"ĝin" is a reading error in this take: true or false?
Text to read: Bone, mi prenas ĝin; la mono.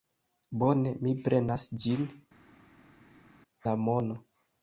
false